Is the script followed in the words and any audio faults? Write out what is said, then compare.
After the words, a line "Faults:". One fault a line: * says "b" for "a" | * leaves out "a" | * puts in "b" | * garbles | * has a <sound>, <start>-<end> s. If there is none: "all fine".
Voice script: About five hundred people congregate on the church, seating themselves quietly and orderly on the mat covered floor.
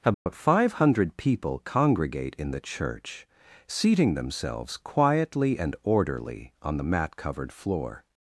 About five hundred people congregate in the church, seating themselves quietly and orderly on the mat covered floor.
Faults:
* has a dropout, 0.1-0.3 s
* says "in" for "on"